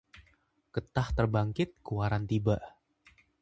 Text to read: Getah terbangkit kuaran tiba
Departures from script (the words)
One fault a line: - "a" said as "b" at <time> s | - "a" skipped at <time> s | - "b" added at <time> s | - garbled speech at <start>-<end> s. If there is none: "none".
none